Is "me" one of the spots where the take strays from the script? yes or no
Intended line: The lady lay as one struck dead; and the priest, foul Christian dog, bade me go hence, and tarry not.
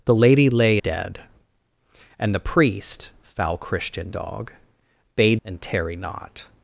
yes